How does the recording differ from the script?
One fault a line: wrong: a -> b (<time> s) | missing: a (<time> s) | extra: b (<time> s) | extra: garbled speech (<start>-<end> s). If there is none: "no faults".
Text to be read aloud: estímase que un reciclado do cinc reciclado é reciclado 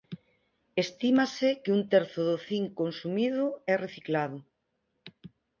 wrong: reciclado -> terzo (1.9 s)
wrong: reciclado -> consumido (2.8 s)